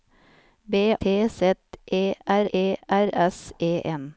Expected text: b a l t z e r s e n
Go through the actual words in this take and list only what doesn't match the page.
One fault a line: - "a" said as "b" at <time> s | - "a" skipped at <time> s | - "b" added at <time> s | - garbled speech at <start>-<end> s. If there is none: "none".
- "a l t z" said as "t z e r" at 1.0 s